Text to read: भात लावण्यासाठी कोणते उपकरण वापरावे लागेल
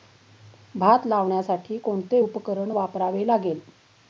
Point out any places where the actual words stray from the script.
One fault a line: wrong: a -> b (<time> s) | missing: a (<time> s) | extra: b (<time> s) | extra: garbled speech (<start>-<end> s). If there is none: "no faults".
no faults